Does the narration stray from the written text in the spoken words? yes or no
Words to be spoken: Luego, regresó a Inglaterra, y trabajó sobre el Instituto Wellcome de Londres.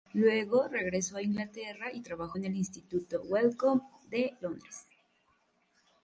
yes